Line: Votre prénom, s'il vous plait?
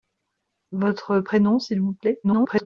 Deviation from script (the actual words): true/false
true